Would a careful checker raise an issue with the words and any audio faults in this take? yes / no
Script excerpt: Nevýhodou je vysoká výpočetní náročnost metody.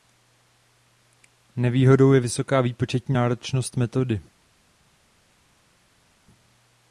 no